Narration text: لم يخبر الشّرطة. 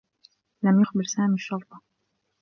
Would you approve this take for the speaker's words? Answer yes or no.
no